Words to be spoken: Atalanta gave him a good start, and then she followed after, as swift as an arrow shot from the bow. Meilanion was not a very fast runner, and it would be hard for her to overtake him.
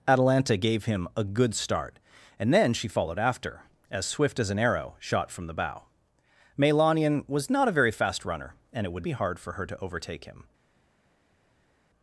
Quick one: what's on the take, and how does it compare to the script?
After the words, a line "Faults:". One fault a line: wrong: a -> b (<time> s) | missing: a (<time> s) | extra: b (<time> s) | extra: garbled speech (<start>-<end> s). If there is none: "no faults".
Atalanta gave him a good start, and then she followed after, as swift as an arrow shot from the bow. Meilanion was not a very fast runner, and it would be hard for her to overtake him.
Faults:
no faults